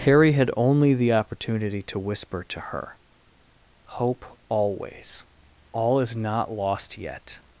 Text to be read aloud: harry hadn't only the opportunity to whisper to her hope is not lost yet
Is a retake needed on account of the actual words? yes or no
yes